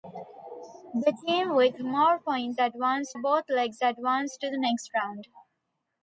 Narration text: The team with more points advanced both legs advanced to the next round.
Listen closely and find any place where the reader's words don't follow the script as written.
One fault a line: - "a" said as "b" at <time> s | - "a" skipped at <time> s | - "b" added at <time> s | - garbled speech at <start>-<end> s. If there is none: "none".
none